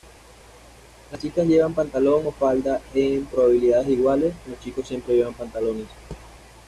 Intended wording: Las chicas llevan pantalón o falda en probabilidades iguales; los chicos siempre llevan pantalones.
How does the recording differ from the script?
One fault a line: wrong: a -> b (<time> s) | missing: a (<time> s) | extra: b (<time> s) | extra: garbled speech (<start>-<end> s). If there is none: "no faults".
no faults